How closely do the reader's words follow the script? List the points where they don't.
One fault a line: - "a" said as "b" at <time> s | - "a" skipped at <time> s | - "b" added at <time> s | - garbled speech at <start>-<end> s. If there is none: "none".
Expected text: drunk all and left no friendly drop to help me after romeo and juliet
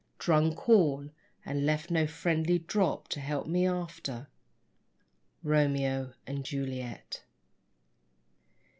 none